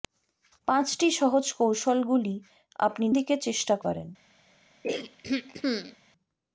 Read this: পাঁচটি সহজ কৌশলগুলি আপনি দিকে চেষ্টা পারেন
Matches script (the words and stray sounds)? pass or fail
fail